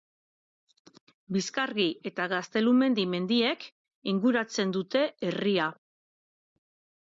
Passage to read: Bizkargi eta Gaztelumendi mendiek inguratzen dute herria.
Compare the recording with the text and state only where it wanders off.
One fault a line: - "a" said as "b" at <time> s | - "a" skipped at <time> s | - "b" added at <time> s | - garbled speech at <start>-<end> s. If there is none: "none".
none